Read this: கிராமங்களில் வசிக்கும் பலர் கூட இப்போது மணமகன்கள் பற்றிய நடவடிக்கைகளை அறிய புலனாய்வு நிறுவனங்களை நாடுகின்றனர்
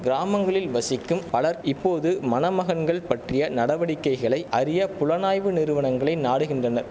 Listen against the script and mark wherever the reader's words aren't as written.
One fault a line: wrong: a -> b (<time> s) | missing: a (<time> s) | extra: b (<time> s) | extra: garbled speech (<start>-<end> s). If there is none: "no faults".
missing: கூட (1.6 s)